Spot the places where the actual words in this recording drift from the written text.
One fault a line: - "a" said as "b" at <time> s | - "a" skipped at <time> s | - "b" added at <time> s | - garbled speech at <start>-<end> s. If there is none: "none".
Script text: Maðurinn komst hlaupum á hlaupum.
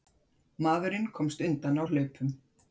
- "hlaupum" said as "undan" at 1.5 s